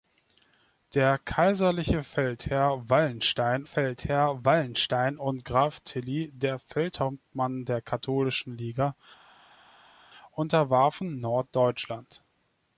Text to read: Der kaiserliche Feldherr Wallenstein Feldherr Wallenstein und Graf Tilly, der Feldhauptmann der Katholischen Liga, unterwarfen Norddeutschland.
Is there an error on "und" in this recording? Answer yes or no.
no